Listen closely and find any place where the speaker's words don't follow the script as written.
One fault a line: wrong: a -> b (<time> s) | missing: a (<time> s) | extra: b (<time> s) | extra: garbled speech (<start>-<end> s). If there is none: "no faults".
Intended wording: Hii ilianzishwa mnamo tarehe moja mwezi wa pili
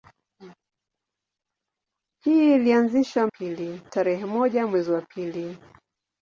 wrong: mnamo -> pili (3.3 s)